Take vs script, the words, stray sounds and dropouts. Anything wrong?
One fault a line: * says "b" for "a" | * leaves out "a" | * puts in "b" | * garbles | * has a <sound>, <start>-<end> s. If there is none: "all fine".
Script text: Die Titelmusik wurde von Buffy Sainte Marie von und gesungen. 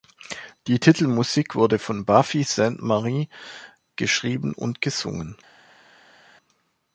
* says "geschrieben" for "von"